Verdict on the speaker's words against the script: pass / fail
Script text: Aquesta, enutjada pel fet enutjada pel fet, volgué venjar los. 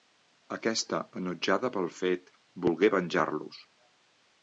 fail